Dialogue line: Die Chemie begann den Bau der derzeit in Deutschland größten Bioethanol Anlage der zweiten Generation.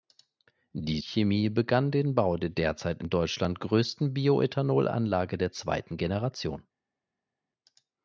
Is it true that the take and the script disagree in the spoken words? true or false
false